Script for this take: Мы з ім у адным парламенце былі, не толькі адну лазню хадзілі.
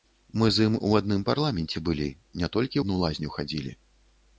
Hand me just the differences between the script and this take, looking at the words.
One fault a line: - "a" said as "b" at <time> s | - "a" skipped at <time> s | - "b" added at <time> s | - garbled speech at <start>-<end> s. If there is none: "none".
none